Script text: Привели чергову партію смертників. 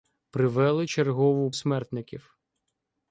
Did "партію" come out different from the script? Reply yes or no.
yes